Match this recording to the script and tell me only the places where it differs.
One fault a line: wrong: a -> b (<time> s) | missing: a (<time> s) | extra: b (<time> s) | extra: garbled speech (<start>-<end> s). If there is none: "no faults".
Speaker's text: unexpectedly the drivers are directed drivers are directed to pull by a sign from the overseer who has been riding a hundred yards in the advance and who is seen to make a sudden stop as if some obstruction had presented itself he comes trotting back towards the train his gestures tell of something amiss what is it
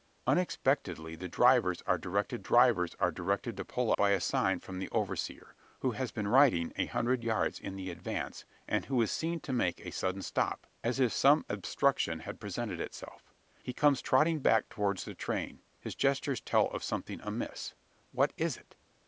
no faults